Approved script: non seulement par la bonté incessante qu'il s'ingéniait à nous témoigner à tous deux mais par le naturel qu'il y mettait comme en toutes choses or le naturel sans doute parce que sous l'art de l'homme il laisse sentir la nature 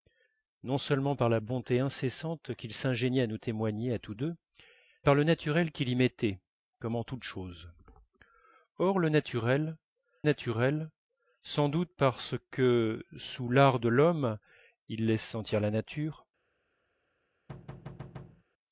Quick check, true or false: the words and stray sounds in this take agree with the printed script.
false